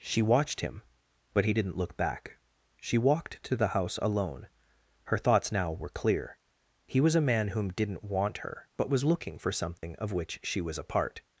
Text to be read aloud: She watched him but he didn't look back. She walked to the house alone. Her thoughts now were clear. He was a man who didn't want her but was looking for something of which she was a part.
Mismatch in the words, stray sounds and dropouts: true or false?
true